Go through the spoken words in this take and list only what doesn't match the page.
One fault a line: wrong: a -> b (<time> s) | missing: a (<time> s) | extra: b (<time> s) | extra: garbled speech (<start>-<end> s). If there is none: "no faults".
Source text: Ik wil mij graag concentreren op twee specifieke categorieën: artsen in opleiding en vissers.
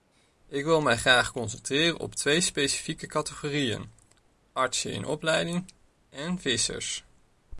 no faults